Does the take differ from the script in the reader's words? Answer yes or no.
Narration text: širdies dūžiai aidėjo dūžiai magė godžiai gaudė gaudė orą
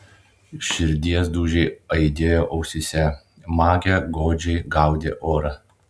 yes